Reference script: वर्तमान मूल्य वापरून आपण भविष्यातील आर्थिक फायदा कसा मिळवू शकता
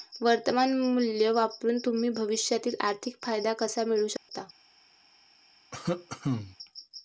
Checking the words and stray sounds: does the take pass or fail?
fail